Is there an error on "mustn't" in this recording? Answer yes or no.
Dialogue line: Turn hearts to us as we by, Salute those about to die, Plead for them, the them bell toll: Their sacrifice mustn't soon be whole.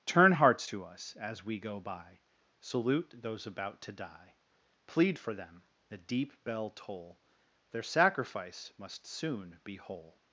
yes